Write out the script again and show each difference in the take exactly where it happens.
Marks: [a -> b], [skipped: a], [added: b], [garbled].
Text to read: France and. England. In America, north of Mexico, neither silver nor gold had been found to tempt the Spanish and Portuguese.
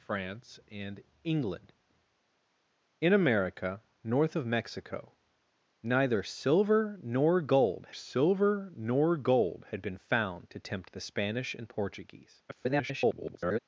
France and. England. In America, north of Mexico, neither silver nor gold [added: silver nor gold] had been found to tempt the Spanish and Portuguese. [garbled]